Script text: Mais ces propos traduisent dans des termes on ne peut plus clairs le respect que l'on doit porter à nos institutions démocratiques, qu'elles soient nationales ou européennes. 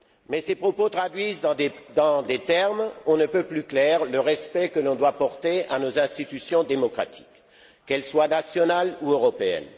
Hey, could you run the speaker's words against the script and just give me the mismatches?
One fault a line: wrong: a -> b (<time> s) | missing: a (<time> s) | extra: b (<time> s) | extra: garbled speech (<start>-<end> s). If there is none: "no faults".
no faults